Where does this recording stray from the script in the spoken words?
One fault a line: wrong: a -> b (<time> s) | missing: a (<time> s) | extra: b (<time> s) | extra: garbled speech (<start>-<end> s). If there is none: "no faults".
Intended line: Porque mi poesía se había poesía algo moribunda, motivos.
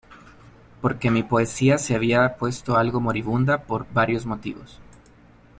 wrong: poesía -> puesto (2.4 s)
extra: por varios (3.6 s)